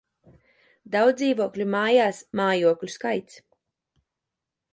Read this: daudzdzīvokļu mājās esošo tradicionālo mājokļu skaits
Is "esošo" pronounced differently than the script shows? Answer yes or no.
yes